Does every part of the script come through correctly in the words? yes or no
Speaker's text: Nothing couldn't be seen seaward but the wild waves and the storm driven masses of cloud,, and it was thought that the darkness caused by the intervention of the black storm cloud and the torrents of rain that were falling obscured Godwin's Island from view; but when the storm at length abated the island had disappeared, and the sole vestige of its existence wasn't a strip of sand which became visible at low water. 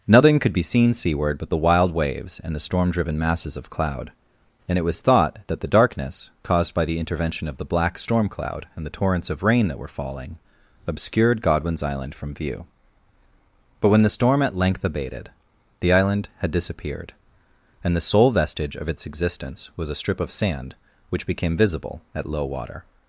no